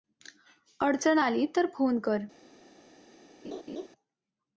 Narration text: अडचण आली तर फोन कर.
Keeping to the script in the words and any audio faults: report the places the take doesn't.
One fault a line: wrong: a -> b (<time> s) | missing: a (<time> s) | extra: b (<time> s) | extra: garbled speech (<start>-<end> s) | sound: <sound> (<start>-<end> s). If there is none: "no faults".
sound: laugh (3.4-3.9 s)